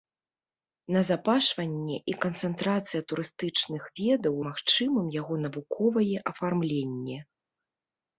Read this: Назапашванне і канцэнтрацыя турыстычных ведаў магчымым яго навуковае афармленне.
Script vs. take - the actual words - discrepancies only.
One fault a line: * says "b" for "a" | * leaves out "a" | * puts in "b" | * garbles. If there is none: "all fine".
all fine